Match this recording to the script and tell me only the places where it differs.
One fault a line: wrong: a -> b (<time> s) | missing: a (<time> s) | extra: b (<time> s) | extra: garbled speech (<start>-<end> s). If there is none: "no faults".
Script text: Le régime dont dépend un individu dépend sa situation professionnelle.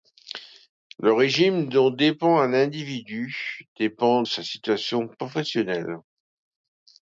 no faults